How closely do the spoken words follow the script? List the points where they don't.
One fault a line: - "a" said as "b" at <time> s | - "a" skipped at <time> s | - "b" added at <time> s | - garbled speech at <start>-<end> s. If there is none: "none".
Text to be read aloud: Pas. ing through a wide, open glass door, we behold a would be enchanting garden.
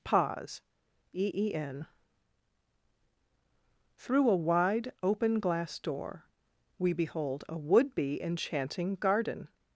- "Pas ing" said as "Pause e e n" at 0.0 s